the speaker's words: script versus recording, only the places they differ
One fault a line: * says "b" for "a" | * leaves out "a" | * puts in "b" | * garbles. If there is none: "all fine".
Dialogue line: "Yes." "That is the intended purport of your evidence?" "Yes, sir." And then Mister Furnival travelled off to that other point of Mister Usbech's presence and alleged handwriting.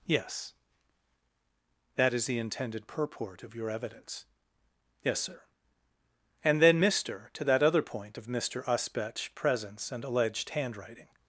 * leaves out "Furnival travelled off"